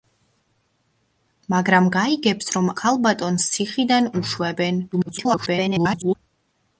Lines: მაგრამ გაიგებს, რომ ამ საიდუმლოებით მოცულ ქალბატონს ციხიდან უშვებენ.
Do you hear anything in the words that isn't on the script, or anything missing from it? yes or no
yes